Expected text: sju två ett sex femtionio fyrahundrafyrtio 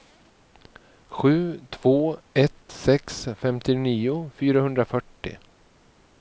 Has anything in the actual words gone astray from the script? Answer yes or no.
no